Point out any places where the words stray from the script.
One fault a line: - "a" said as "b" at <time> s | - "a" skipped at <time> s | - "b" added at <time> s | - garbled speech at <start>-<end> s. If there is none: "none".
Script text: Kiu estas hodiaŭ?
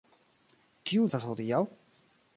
none